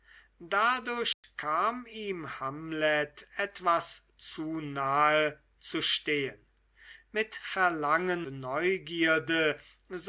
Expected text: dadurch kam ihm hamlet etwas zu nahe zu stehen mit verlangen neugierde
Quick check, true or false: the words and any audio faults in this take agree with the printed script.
false